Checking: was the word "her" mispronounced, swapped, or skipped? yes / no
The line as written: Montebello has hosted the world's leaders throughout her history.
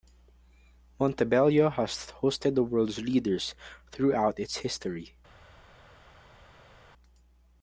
yes